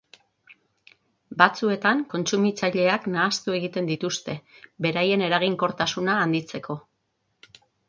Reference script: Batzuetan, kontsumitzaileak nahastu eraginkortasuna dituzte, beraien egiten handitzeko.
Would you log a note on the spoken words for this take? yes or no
yes